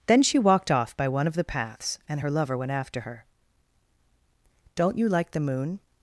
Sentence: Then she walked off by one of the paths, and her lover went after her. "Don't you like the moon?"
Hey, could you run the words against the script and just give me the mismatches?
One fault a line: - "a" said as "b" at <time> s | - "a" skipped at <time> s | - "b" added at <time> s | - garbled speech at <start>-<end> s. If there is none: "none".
none